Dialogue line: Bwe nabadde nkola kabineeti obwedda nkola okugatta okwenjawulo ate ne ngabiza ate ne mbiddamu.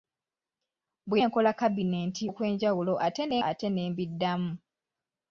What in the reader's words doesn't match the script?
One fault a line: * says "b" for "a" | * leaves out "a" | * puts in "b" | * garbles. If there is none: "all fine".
* leaves out "nabadde"
* leaves out "obwedda nkola okugatta"
* leaves out "ngabiza"